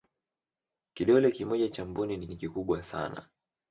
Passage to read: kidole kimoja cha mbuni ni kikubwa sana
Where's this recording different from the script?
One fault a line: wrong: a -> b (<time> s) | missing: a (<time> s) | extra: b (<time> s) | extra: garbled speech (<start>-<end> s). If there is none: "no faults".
extra: ni (2.3 s)